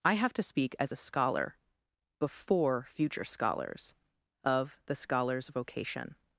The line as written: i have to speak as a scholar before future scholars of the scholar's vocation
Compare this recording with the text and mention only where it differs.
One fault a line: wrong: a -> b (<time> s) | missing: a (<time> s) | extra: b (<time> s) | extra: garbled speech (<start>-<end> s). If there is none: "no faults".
no faults